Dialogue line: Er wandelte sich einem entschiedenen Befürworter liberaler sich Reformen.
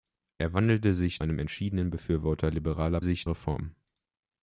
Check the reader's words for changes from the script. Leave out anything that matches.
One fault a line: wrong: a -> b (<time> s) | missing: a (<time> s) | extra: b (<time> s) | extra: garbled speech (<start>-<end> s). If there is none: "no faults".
no faults